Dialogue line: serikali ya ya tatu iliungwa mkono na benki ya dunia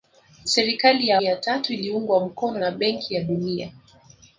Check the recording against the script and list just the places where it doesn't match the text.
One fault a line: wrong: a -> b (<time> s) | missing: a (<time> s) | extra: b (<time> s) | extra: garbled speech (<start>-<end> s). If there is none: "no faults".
no faults